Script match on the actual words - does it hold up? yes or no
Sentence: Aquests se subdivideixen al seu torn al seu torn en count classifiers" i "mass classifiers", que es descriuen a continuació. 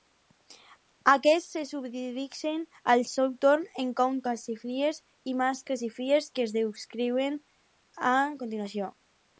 no